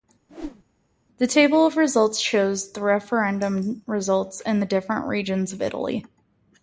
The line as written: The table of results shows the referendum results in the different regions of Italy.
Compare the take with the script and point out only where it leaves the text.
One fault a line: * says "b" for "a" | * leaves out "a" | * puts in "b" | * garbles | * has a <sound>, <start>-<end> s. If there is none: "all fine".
* has a whoosh, 0.3-0.6 s